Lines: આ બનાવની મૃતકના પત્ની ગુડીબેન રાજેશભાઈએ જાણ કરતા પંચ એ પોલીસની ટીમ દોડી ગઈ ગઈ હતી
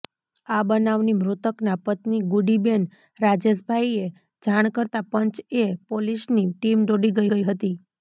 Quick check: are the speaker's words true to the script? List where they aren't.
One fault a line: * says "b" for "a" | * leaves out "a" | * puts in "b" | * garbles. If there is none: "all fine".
all fine